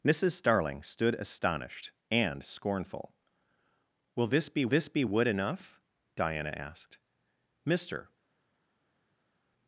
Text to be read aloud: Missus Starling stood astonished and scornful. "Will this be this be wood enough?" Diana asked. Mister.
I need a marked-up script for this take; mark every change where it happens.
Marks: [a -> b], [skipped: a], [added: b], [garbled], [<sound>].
Missus Starling stood astonished and scornful. "Will this be this be wood enough?" Diana asked. Mister.